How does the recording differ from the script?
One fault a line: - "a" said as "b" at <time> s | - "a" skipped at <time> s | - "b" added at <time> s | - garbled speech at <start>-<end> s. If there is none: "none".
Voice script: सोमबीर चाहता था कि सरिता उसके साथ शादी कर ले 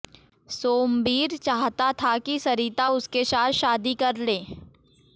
none